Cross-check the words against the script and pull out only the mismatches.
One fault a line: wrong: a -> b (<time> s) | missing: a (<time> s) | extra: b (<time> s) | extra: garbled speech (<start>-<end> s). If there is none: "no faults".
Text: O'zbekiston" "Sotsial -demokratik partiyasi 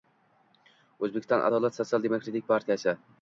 extra: Adolat (1.5 s)